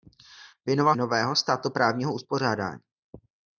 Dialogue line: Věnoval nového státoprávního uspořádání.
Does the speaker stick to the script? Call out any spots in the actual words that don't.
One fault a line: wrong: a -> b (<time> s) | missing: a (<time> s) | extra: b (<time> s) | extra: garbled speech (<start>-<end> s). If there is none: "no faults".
no faults